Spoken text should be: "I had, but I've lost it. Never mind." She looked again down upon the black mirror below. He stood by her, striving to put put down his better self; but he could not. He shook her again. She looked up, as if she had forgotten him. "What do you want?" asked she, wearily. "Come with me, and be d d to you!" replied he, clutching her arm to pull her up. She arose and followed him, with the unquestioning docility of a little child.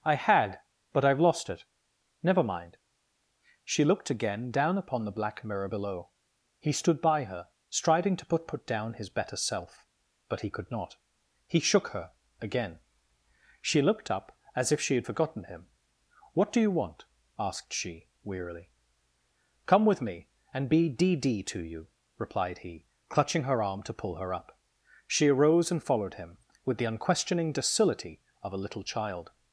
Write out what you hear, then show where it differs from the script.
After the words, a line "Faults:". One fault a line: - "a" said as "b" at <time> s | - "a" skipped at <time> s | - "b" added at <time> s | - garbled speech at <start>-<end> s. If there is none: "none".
"I had, but I've lost it. Never mind." She looked again down upon the black mirror below. He stood by her, striving to put put down his better self; but he could not. He shook her again. She looked up, as if she had forgotten him. "What do you want?" asked she, wearily. "Come with me, and be d d to you!" replied he, clutching her arm to pull her up. She arose and followed him, with the unquestioning docility of a little child.
Faults:
none